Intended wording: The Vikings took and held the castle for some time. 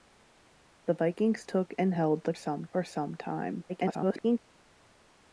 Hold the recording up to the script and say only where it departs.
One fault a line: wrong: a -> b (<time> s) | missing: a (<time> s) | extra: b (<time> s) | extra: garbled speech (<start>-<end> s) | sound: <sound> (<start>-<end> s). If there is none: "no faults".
wrong: castle -> some (2.3 s)
extra: garbled speech (3.7-4.4 s)